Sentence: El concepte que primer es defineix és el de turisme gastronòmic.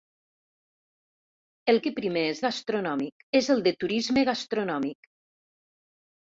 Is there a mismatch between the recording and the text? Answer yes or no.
yes